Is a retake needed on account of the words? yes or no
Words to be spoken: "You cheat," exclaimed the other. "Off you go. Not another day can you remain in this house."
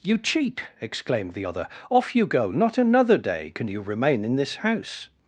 no